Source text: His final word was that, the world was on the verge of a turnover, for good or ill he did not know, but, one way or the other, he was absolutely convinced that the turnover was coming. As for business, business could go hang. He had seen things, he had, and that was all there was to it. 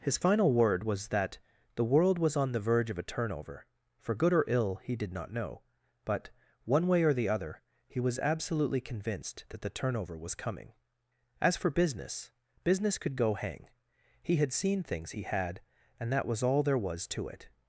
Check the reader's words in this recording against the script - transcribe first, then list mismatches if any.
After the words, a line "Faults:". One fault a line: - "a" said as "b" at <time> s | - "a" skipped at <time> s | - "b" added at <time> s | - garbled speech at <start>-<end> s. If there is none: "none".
His final word was that, the world was on the verge of a turnover, for good or ill he did not know, but, one way or the other, he was absolutely convinced that the turnover was coming. As for business, business could go hang. He had seen things, he had, and that was all there was to it.
Faults:
none